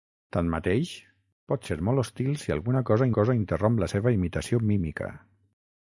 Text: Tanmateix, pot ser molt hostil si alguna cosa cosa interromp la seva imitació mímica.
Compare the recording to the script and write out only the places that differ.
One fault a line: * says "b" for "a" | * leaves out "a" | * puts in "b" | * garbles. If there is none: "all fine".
all fine